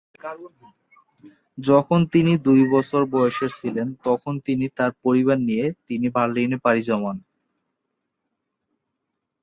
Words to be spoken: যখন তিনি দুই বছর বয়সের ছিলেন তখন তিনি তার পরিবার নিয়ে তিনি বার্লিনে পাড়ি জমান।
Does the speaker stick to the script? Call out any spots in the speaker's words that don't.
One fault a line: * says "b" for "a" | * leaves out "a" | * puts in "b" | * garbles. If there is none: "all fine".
all fine